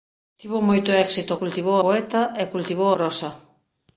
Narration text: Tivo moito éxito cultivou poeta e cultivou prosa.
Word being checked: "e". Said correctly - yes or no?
yes